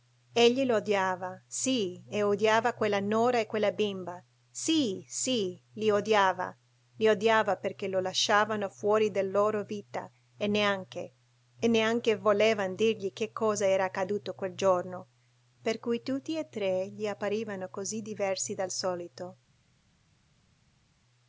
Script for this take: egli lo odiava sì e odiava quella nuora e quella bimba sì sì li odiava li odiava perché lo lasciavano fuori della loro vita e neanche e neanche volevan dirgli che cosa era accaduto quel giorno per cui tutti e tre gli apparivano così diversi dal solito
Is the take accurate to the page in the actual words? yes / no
yes